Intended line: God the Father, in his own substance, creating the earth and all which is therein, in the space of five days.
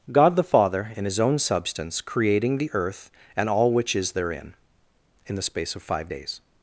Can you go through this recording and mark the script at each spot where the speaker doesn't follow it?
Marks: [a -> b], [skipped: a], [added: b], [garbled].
God the Father, in his own substance, creating the earth and all which is therein, in the space of five days.